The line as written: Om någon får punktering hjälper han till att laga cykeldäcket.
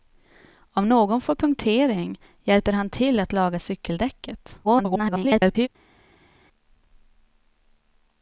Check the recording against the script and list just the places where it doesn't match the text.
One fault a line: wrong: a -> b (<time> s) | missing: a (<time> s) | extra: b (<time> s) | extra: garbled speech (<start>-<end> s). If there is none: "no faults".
extra: garbled speech (4.6-5.7 s)